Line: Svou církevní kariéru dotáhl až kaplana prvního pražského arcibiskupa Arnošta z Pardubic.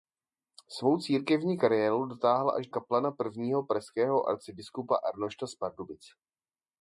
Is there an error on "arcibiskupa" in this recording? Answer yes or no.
no